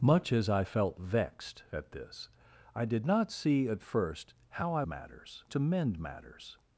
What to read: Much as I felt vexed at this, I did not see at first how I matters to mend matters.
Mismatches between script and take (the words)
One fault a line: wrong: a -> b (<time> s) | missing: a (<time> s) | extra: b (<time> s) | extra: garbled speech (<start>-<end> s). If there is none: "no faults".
no faults